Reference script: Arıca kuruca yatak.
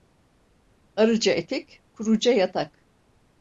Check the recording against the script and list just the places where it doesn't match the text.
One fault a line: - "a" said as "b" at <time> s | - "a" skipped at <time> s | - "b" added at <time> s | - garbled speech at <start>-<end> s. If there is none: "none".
- "etek" added at 1.3 s